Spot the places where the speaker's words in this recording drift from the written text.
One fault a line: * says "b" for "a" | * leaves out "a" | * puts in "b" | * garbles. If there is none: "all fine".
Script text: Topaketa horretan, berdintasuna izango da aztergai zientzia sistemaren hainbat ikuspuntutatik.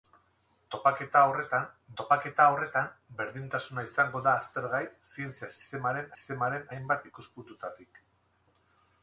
* puts in "topaketa horretan"
* puts in "sistemaren"